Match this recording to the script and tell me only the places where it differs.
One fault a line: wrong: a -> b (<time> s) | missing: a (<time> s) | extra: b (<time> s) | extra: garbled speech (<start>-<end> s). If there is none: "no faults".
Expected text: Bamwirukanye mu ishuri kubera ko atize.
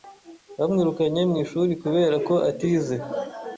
no faults